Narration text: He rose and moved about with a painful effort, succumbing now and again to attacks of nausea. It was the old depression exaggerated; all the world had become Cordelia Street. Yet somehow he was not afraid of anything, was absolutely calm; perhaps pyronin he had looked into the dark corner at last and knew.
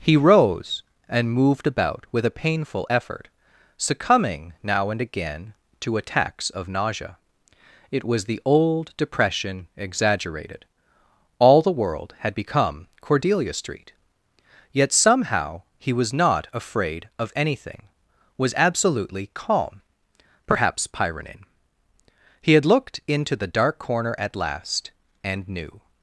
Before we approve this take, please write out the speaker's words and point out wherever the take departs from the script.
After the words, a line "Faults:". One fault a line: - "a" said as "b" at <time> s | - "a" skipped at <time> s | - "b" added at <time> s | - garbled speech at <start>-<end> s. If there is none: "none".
He rose and moved about with a painful effort, succumbing now and again to attacks of nausea. It was the old depression exaggerated; all the world had become Cordelia Street. Yet somehow he was not afraid of anything, was absolutely calm; perhaps pyronin he had looked into the dark corner at last and knew.
Faults:
none